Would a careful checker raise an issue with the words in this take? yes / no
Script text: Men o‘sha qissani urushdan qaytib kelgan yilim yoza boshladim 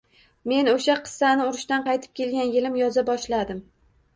no